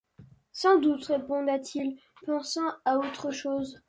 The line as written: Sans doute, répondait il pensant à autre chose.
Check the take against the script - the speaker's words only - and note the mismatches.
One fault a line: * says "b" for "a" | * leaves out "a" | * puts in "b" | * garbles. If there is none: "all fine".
all fine